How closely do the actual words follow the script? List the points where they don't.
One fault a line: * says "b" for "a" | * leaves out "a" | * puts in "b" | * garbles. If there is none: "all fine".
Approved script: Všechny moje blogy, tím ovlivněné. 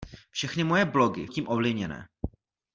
all fine